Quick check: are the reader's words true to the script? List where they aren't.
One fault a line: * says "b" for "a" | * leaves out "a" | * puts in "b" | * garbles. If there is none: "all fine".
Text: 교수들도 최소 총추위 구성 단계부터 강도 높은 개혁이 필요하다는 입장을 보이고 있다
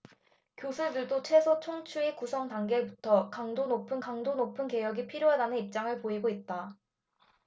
* puts in "강도 높은"